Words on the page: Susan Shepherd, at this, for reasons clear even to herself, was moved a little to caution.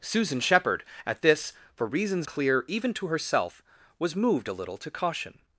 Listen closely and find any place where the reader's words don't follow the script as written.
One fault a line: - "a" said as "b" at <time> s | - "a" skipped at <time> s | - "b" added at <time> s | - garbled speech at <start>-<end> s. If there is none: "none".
none